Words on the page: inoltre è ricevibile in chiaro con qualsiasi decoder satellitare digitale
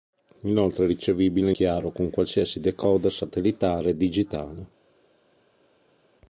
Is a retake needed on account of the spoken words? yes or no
yes